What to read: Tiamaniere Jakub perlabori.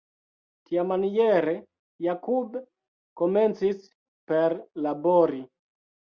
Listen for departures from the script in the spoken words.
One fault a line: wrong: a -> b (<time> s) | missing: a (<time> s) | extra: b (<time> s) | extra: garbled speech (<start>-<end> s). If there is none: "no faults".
extra: komencis (3.2 s)